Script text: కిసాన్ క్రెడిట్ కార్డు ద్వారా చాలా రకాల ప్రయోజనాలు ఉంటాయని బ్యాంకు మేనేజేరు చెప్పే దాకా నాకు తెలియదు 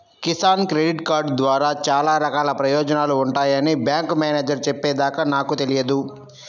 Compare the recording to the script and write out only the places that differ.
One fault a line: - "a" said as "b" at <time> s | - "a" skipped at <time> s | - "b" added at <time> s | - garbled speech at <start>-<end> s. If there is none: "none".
none